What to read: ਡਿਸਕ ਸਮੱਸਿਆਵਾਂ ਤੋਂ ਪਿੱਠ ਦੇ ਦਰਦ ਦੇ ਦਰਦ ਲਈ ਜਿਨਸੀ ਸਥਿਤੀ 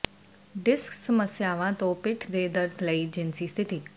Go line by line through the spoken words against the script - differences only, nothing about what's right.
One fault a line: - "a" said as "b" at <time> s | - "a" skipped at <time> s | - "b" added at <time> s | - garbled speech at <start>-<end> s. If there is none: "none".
- "ਦੇ ਦਰਦ" skipped at 2.8 s